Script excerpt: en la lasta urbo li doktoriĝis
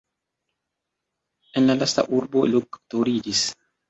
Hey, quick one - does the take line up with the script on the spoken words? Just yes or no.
no